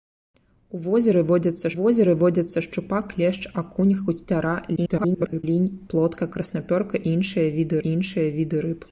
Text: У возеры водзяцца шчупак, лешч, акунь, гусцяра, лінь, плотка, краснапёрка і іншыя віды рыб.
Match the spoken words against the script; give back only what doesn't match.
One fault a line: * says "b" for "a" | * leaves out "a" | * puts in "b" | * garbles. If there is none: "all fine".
* puts in "возеры водзяцца"
* garbles
* puts in "і іншыя віды"